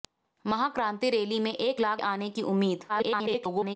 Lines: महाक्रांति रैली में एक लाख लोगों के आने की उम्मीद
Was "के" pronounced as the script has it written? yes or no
no